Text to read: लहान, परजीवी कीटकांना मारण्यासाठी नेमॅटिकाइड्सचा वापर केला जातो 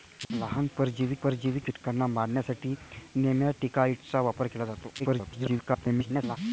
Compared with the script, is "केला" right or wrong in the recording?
right